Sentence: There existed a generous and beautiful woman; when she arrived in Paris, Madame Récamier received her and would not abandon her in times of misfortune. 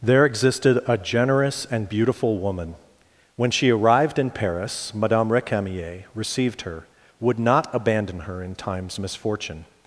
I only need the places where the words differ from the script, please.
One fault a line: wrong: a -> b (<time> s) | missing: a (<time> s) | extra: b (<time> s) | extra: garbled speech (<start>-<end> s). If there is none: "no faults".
missing: and (6.9 s)
missing: of (9.0 s)